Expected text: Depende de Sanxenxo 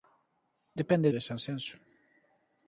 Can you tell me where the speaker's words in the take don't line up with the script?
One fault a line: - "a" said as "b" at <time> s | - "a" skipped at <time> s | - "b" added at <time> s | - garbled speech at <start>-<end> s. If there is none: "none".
none